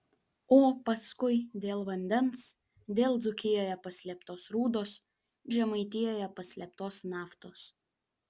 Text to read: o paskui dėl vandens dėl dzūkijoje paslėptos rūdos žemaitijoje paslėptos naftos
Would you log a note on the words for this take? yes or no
no